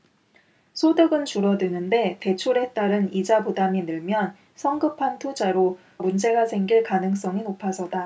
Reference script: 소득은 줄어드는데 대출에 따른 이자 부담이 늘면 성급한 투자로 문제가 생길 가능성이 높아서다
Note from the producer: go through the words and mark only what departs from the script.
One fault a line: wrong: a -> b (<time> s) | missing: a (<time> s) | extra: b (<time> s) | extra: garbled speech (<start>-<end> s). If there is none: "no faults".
no faults